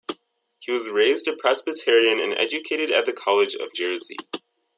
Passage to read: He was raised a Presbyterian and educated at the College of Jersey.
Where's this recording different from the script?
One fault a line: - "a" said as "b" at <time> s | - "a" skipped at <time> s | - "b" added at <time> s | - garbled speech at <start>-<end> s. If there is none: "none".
none